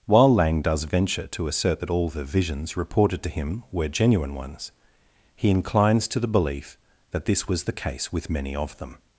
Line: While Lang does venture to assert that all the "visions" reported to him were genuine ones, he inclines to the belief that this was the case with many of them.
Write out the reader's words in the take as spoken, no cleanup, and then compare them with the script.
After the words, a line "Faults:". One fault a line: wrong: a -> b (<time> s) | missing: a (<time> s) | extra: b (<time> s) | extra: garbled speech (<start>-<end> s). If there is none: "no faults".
While Lang does venture to assert that all the "visions" reported to him were genuine ones, he inclines to the belief that this was the case with many of them.
Faults:
no faults